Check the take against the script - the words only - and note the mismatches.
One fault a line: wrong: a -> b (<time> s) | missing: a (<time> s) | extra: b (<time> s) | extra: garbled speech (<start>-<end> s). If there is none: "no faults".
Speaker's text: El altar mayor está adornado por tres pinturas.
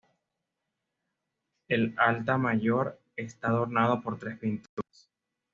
no faults